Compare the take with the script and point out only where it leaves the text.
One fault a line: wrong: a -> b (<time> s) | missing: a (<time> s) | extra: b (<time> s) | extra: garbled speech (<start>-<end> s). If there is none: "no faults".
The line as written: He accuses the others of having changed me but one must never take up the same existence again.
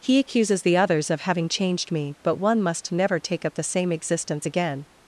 no faults